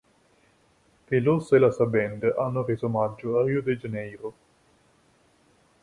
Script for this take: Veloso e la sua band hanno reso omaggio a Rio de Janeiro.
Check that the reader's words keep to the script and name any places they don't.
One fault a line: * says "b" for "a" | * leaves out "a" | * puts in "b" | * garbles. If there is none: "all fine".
all fine